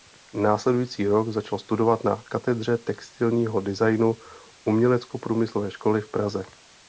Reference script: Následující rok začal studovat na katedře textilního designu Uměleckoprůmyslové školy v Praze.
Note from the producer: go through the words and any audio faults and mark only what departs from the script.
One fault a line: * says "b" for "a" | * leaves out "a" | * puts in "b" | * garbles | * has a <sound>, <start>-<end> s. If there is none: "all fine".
all fine